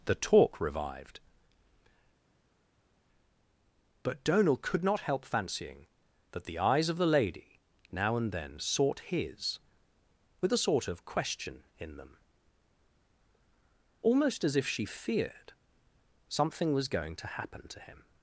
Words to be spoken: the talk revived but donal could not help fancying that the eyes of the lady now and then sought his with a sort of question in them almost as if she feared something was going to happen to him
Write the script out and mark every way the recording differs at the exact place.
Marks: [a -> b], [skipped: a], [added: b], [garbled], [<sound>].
the talk revived but donal could not help fancying that the eyes of the lady now and then sought his with a sort of question in them almost as if she feared something was going to happen to him